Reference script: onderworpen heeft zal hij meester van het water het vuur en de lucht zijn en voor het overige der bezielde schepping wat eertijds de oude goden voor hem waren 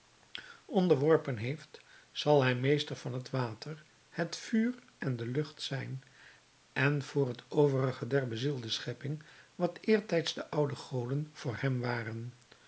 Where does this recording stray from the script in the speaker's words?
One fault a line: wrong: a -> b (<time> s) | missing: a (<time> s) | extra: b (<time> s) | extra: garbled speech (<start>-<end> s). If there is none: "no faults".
no faults